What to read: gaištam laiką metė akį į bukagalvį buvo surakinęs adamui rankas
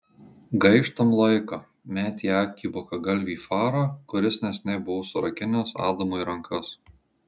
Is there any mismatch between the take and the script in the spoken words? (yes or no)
yes